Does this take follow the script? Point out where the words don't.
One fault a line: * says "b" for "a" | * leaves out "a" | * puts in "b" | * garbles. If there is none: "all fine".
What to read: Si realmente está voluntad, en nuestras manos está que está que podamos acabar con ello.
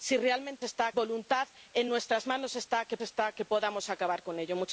all fine